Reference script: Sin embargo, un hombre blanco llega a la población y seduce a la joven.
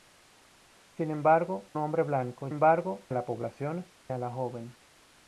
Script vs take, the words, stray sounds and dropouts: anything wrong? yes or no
yes